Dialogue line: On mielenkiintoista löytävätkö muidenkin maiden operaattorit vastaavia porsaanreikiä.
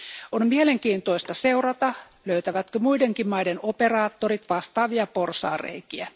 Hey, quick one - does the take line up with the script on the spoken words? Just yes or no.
no